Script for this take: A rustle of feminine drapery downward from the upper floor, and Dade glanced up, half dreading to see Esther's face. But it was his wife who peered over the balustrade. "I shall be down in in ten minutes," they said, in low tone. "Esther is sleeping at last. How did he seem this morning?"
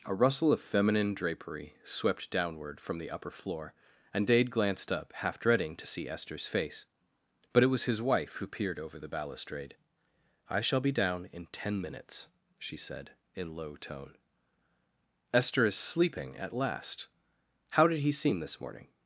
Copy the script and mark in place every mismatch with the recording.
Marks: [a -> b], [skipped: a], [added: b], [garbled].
A rustle of feminine drapery [added: swept] downward from the upper floor, and Dade glanced up, half dreading to see Esther's face. But it was his wife who peered over the balustrade. "I shall be down in [skipped: in] ten minutes," [they -> she] said, in low tone. "Esther is sleeping at last. How did he seem this morning?"